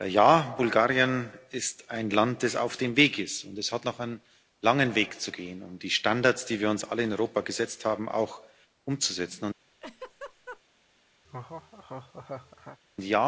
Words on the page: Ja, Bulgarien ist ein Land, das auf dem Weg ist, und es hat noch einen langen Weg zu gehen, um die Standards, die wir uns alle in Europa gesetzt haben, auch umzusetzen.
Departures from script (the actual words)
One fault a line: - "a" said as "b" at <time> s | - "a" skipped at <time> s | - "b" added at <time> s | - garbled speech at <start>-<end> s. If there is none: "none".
none